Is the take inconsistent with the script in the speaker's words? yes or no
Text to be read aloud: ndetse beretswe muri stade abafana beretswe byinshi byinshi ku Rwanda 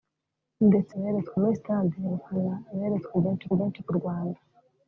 no